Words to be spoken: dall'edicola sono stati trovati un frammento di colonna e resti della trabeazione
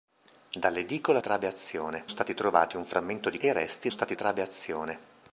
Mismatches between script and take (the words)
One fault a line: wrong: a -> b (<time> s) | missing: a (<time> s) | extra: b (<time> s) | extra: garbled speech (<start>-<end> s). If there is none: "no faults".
wrong: sono -> trabeazione (1.2 s)
missing: colonna (3.4 s)
wrong: della -> stati (3.9 s)